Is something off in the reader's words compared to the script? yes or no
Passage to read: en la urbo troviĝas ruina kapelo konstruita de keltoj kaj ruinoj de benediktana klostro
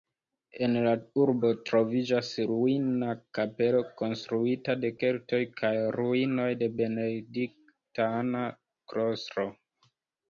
no